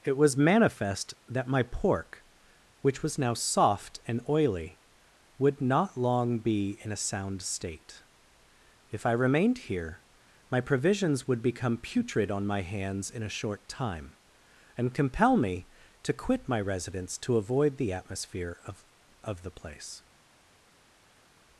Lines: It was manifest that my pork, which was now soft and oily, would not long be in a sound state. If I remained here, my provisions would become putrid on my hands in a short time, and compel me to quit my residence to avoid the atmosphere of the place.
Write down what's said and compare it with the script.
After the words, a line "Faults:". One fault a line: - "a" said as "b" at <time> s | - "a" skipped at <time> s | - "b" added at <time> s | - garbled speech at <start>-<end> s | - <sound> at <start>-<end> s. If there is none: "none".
It was manifest that my pork, which was now soft and oily, would not long be in a sound state. If I remained here, my provisions would become putrid on my hands in a short time, and compel me to quit my residence to avoid the atmosphere of of the place.
Faults:
- "of" added at 19.2 s